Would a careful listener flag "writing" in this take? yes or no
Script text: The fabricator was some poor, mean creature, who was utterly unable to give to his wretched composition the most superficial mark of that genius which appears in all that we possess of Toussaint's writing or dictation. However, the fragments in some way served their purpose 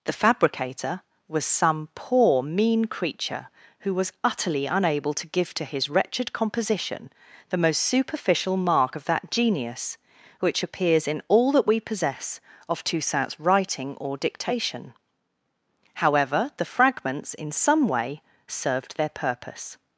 no